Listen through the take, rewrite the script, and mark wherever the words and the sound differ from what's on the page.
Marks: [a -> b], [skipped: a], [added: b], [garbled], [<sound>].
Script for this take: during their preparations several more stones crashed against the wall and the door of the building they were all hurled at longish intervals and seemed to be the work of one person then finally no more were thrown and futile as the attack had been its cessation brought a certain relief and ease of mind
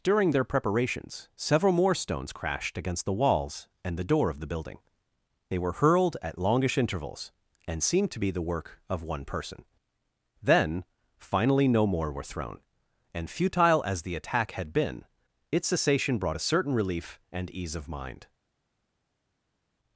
during their preparations several more stones crashed against the [wall -> walls] and the door of the building they were [skipped: all] hurled at longish intervals and seemed to be the work of one person then finally no more were thrown and futile as the attack had been its cessation brought a certain relief and ease of mind